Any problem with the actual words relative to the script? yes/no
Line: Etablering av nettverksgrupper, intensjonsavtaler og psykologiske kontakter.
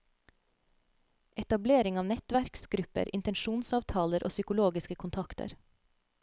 no